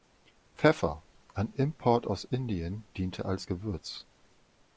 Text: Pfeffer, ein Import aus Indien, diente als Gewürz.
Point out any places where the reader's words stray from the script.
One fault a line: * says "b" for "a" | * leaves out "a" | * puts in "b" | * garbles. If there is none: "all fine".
all fine